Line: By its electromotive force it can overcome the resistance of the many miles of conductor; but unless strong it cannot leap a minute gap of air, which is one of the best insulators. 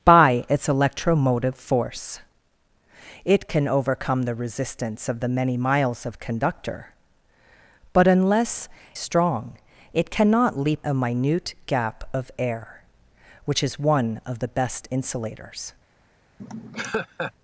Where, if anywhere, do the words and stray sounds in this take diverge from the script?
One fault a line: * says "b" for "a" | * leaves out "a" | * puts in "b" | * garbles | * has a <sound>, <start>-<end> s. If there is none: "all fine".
* has a laugh, 16.4-17.3 s